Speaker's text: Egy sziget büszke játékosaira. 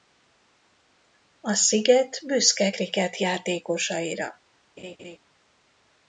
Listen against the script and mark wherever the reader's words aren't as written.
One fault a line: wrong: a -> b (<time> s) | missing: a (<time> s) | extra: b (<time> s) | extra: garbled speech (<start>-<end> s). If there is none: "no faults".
wrong: Egy -> A (1.4 s)
extra: krikett (2.7 s)